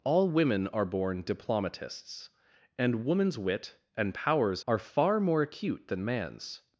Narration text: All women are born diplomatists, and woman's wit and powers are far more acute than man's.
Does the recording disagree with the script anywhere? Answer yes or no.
no